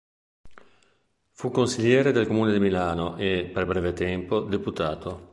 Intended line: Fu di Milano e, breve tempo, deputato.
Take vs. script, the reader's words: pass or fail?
fail